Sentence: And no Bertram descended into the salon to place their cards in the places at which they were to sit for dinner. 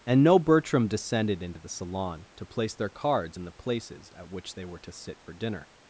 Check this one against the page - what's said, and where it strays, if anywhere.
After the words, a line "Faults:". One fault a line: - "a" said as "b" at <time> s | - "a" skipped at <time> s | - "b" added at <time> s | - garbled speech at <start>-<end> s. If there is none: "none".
And no Bertram descended into the salon to place their cards in the places at which they were to sit for dinner.
Faults:
none